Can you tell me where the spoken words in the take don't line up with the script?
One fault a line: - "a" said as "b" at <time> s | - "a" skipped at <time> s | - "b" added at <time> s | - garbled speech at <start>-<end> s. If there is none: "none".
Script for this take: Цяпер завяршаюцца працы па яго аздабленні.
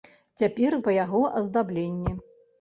- "завяршаюцца працы" skipped at 0.8 s